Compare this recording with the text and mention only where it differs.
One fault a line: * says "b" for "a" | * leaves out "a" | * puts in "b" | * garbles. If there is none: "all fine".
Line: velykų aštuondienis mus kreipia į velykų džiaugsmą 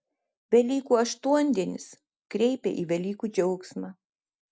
* leaves out "mus"